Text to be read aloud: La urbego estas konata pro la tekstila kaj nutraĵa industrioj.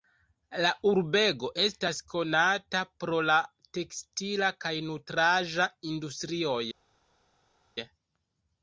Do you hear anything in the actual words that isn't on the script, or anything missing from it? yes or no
no